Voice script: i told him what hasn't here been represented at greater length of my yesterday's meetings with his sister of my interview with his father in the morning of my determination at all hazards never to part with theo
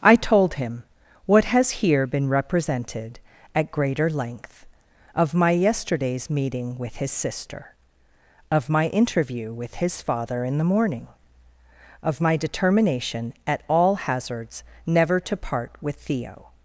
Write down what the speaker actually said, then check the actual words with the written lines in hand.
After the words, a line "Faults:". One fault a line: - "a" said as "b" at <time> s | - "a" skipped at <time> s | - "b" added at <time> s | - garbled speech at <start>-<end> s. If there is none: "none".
i told him what has here been represented at greater length of my yesterday's meeting with his sister of my interview with his father in the morning of my determination at all hazards never to part with theo
Faults:
- "hasn't" said as "has" at 1.4 s
- "meetings" said as "meeting" at 6.3 s